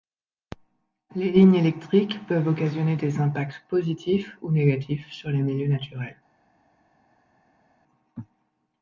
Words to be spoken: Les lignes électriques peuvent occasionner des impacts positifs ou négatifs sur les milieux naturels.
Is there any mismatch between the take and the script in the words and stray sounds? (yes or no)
no